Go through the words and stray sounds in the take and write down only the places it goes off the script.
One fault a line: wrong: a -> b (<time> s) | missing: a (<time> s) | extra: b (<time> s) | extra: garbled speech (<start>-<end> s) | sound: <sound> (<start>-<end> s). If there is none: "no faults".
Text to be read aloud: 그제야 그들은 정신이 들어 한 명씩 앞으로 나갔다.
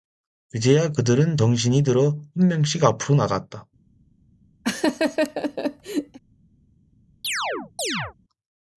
sound: laugh (4.6-6.2 s)
sound: chirp (7.2-8.1 s)